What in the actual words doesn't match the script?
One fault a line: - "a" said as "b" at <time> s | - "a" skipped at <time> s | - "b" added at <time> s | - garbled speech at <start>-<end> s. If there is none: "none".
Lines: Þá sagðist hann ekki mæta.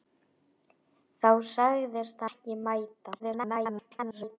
- "hann" skipped at 2.3 s
- garbled speech at 3.2-4.4 s